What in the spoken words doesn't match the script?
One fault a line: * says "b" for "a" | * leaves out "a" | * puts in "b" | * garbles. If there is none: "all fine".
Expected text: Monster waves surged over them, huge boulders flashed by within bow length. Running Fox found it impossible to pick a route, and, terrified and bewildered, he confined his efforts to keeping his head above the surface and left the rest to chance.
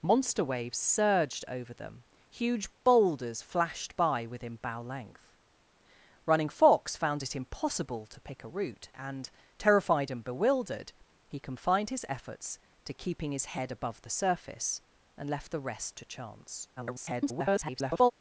* garbles